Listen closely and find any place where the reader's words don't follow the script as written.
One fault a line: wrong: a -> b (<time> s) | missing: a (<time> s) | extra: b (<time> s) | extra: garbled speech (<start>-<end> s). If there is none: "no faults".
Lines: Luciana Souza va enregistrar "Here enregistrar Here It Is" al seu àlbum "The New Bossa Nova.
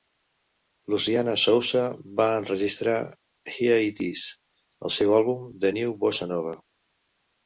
missing: enregistrar Here (3.8 s)